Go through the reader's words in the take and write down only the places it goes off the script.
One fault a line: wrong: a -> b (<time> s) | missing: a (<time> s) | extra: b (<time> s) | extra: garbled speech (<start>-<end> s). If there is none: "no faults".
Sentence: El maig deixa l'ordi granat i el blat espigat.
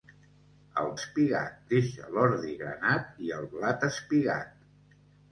wrong: maig -> espigat (1.0 s)